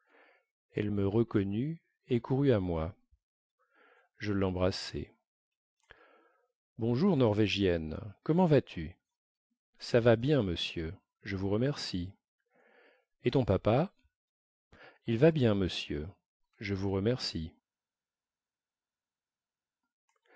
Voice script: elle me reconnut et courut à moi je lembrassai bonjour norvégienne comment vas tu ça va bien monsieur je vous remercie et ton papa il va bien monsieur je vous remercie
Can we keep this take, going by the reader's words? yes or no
yes